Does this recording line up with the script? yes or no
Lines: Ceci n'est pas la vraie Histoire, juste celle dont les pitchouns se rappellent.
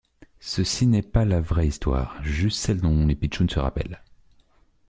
yes